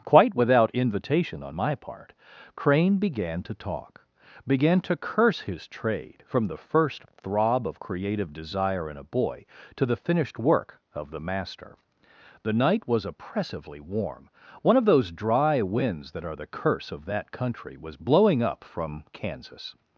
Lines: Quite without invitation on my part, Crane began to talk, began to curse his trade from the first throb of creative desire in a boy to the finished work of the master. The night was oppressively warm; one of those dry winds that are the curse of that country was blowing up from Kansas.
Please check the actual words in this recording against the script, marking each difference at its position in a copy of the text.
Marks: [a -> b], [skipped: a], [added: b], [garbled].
Quite without invitation on my part, Crane began to talk, began to curse his trade from the first throb of creative desire in a boy to the finished work of the master. The night was oppressively warm; one of those dry winds that are the curse of that country was blowing up from Kansas.